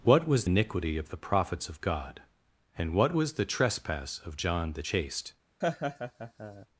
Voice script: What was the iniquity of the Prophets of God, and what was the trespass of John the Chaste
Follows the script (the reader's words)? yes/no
no